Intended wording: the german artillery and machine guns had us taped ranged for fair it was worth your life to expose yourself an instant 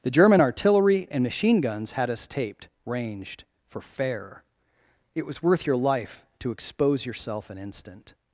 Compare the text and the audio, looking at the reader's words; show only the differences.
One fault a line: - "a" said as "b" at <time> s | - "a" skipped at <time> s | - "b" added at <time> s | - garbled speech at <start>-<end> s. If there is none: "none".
none